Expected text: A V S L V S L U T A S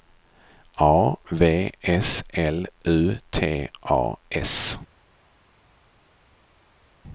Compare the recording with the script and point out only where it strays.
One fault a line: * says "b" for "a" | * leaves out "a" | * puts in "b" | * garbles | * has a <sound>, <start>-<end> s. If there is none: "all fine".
* leaves out "V S L"